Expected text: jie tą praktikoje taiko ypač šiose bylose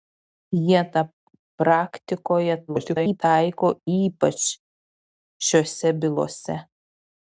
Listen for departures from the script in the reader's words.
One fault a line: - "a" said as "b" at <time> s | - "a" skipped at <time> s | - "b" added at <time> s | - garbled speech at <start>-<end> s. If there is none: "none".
- garbled speech at 2.7-3.2 s